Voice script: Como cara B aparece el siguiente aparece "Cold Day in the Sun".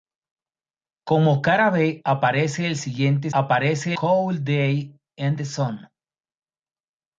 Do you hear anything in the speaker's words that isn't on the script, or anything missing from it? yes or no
no